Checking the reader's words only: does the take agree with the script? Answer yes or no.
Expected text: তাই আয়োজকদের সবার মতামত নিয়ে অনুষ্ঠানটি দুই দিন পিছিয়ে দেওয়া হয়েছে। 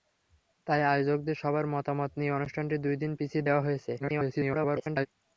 no